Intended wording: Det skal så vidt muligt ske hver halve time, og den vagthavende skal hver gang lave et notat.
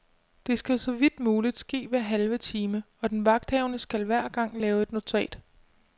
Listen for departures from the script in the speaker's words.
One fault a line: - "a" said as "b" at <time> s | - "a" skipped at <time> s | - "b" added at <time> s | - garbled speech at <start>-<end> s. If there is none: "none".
none